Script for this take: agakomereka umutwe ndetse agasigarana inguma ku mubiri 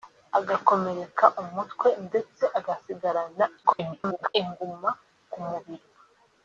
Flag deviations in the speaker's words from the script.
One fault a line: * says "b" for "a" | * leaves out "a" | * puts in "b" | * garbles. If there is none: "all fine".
* garbles